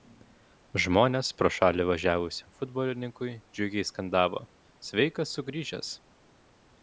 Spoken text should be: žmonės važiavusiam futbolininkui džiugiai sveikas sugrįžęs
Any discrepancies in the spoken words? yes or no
yes